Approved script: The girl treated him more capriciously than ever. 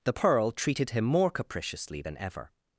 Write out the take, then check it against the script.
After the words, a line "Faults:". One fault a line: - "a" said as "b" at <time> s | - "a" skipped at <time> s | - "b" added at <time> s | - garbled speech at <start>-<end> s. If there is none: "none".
The pearl treated him more capriciously than ever.
Faults:
- "girl" said as "pearl" at 0.1 s